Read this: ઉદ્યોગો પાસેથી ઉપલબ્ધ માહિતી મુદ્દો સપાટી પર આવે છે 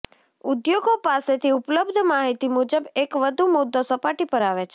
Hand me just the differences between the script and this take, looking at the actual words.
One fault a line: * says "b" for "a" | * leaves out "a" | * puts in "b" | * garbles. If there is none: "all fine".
* puts in "મુજબ એક વધુ"